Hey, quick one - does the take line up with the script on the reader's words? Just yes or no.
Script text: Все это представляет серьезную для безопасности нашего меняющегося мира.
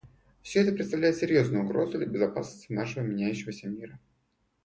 no